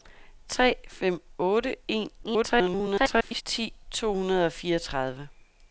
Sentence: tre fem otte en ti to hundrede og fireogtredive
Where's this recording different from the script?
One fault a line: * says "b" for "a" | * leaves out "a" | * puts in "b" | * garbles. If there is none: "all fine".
* garbles